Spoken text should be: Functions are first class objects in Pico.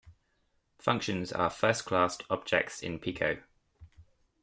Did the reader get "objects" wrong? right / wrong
right